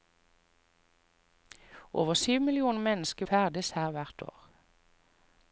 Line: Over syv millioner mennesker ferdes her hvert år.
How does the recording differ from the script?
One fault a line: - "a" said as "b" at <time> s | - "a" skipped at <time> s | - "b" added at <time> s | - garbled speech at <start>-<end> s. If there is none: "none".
none